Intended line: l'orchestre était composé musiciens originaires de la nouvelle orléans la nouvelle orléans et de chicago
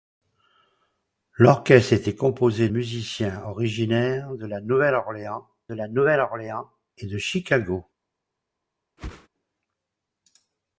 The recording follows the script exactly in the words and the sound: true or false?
false